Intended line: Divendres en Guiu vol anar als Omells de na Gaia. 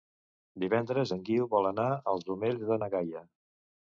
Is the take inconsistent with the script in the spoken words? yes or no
no